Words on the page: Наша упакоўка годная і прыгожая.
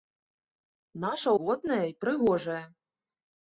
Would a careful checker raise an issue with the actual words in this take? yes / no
yes